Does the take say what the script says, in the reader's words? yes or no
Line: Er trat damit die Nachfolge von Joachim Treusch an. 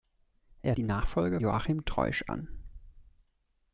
no